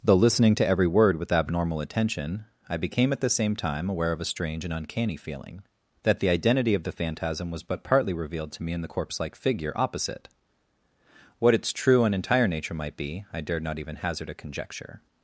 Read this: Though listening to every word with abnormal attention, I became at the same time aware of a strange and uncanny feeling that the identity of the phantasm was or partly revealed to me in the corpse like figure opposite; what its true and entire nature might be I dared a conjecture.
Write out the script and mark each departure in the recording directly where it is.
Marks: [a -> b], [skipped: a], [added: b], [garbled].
Though listening to every word with abnormal attention, I became at the same time aware of a strange and uncanny feeling that the identity of the phantasm was [or -> but] partly revealed to me in the corpse like figure opposite; what its true and entire nature might be I dared [added: not even hazard] a conjecture.